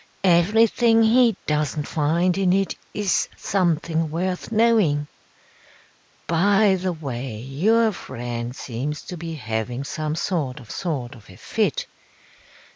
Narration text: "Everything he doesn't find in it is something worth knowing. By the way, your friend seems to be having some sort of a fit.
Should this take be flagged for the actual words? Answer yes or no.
yes